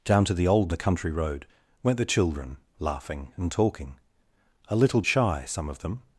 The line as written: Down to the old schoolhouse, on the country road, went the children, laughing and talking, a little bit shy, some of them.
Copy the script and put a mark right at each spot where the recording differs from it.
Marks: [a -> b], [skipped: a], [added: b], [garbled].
Down to the old [skipped: schoolhouse, on] the country road, went the children, laughing and talking, a little [skipped: bit] shy, some of them.